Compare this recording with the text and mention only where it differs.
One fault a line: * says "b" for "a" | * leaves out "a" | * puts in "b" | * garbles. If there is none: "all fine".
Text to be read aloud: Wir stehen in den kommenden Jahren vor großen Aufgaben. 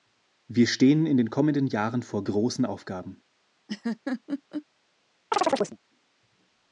all fine